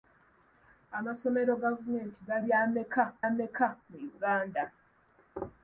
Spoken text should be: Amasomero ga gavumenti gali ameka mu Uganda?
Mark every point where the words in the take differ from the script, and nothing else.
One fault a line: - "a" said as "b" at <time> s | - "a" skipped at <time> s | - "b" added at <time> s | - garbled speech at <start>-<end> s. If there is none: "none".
- "ga" skipped at 1.5 s
- "ameka" added at 3.3 s